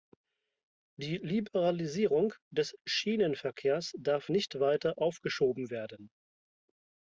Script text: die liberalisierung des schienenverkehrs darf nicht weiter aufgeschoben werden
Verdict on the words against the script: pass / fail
pass